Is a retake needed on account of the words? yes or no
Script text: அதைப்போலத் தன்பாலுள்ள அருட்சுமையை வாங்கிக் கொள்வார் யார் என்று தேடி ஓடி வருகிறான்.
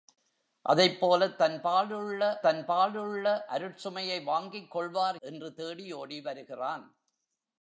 yes